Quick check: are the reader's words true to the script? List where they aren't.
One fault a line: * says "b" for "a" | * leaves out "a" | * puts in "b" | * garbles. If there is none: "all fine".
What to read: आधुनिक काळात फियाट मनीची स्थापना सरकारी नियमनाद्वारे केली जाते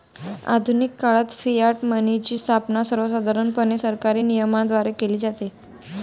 * puts in "सर्वसाधारणपणे"